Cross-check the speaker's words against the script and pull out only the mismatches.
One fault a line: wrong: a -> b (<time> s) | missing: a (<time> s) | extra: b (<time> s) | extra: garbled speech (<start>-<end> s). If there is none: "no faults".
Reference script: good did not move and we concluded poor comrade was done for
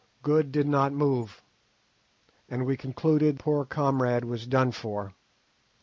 no faults